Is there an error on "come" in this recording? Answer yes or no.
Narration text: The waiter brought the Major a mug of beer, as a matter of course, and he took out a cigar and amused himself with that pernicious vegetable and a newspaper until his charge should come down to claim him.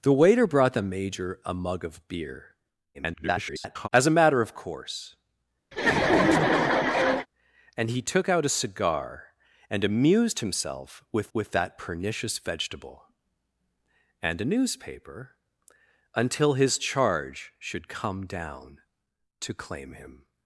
no